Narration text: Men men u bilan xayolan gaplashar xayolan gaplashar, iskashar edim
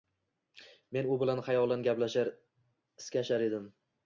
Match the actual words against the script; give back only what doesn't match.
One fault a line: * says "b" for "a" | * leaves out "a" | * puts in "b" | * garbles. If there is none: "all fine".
* leaves out "men"
* leaves out "xayolan gaplashar"